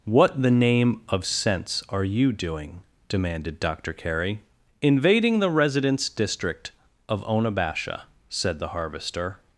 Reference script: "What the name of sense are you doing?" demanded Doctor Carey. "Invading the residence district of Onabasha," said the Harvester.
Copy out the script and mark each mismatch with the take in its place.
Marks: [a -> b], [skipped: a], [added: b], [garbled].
"What the name of sense are you doing?" demanded Doctor Carey. "Invading the residence district of Onabasha," said the Harvester.